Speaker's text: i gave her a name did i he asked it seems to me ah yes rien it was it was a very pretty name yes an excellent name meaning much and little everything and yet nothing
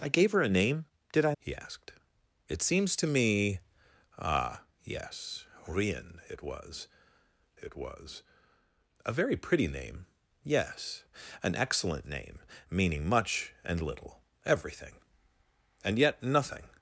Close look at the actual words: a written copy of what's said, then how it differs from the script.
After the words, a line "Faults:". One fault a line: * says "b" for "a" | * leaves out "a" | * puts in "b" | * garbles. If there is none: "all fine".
i gave her a name did i he asked it seems to me ah yes rien it was it was a very pretty name yes an excellent name meaning much and little everything and yet nothing
Faults:
all fine